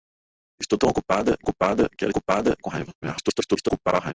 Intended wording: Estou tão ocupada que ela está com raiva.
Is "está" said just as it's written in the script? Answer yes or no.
no